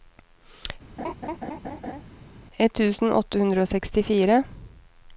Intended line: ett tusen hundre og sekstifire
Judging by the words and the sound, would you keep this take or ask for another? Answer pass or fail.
fail